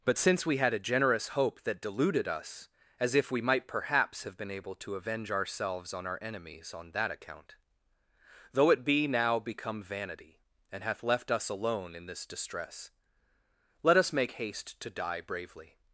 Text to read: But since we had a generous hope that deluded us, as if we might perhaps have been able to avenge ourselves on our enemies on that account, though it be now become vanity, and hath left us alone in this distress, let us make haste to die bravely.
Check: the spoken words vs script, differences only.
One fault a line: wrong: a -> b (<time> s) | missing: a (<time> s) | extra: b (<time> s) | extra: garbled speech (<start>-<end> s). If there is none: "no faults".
no faults